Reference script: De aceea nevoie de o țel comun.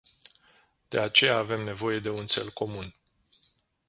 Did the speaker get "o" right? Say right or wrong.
wrong